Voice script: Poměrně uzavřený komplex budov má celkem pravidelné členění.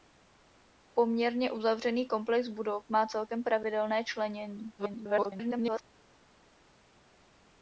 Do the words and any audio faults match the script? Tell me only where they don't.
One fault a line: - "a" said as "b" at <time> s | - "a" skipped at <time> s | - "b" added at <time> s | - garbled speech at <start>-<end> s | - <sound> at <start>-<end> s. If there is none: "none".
- garbled speech at 4.8-5.8 s